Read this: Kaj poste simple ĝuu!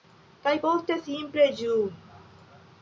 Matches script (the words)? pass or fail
pass